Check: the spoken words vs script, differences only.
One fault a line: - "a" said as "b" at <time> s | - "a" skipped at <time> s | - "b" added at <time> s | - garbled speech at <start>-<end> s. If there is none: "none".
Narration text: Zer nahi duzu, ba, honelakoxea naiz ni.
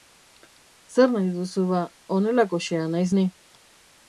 none